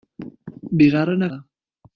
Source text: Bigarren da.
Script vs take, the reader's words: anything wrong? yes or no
no